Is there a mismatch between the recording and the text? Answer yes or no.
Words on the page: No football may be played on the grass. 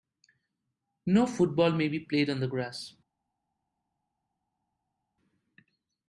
no